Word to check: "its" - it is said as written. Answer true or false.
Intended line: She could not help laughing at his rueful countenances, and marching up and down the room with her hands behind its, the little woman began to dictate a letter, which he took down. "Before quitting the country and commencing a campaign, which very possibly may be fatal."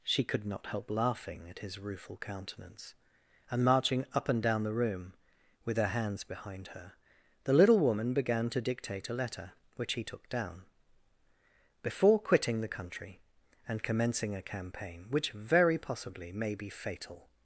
false